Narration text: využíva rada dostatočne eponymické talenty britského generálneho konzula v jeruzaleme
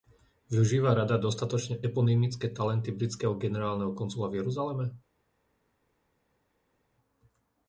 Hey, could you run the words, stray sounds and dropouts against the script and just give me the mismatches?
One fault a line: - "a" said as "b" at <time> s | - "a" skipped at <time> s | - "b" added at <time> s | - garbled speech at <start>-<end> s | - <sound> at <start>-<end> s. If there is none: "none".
none